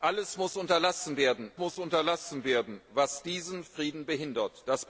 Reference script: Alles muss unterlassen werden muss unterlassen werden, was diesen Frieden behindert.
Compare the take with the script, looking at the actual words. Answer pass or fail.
pass